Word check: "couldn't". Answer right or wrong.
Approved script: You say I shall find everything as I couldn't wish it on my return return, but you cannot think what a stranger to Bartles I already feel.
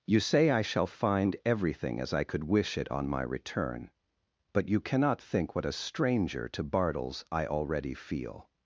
wrong